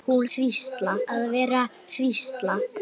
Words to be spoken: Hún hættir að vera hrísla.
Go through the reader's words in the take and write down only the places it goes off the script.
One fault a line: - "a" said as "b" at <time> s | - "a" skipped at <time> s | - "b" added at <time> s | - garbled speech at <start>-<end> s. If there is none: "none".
- "hættir" said as "hrísla" at 0.3 s